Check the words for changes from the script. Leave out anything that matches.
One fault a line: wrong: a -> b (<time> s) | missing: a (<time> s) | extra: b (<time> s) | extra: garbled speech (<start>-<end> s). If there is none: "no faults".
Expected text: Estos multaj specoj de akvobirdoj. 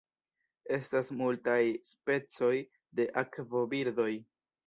wrong: Estos -> Estas (0.8 s)